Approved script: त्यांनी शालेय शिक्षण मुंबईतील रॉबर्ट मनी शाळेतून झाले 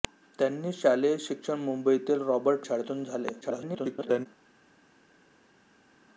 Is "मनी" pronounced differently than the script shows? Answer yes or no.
yes